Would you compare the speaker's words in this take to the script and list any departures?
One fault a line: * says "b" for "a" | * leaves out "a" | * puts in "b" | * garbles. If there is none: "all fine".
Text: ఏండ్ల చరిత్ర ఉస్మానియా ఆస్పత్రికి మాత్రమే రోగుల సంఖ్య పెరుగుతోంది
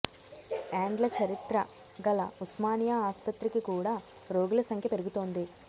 * puts in "గల"
* says "కూడా" for "మాత్రమే"